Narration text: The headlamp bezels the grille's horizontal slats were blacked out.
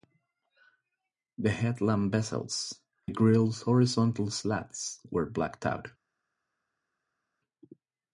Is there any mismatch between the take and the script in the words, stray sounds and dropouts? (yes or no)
no